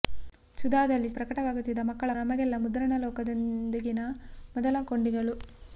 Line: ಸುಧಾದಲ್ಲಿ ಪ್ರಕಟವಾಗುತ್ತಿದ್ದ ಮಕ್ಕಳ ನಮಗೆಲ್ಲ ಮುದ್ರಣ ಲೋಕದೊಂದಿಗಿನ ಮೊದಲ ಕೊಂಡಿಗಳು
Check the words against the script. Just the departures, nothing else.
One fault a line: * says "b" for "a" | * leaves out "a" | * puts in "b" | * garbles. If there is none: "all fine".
all fine